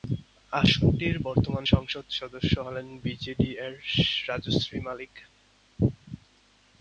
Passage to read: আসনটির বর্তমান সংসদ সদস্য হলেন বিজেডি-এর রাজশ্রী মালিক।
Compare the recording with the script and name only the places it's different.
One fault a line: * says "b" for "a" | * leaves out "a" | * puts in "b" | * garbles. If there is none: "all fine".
all fine